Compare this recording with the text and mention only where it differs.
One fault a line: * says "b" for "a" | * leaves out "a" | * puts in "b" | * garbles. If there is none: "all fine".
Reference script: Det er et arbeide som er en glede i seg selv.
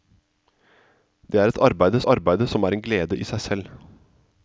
* puts in "arbeide"